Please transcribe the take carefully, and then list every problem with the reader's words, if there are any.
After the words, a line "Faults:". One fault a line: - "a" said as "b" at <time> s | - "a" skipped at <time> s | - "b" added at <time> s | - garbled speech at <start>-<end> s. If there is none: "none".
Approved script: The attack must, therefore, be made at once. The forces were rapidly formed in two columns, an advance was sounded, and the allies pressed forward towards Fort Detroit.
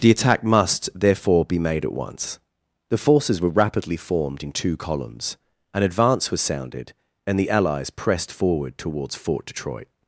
The attack must, therefore, be made at once. The forces were rapidly formed in two columns, an advance was sounded, and the allies pressed forward towards Fort Detroit.
Faults:
none